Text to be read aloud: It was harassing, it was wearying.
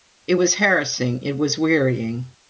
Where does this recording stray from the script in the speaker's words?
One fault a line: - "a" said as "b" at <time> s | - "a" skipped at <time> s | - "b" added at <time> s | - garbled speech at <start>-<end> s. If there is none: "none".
none